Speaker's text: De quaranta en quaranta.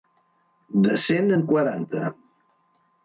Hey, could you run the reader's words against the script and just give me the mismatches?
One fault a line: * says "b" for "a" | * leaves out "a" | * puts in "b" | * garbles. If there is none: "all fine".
* says "cent" for "quaranta"